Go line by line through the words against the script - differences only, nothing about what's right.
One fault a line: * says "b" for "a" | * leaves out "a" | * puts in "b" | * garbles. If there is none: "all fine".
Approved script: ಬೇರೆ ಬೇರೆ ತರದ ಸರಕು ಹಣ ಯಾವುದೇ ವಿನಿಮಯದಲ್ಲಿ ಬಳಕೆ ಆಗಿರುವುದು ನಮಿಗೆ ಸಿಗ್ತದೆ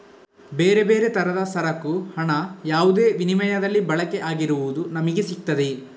all fine